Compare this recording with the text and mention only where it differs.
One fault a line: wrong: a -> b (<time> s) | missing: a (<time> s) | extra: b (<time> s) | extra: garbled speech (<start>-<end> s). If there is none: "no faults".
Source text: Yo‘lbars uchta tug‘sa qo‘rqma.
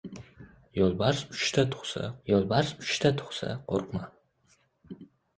extra: yo‘lbars uchta tug‘sa (2.3 s)